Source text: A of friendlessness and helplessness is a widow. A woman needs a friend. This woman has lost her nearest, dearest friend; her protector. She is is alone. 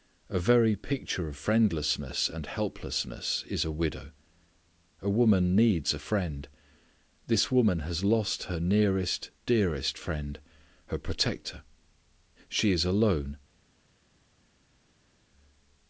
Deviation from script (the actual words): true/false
true